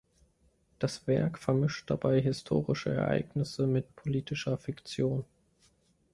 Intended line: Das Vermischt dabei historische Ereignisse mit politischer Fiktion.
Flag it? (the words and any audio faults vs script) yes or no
yes